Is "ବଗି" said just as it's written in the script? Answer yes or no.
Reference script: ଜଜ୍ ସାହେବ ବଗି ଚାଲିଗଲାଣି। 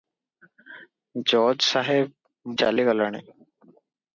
no